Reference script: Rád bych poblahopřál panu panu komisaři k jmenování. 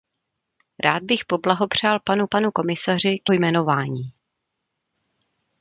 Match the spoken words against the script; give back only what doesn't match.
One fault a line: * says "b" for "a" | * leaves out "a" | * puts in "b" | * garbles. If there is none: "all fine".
all fine